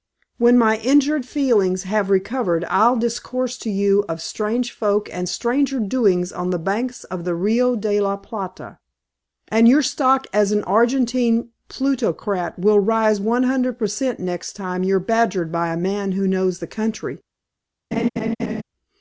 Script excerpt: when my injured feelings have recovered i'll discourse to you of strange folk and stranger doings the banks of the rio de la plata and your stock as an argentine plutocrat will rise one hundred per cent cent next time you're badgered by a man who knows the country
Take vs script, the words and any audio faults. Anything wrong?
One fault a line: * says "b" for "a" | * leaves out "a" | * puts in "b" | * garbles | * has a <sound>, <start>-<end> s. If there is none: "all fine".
* puts in "on"
* leaves out "cent"
* has a laugh, 17.9-18.6 s